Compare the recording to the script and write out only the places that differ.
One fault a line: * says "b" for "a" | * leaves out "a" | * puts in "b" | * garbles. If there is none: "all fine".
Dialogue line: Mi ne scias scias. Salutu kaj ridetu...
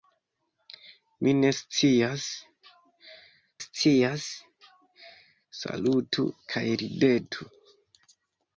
all fine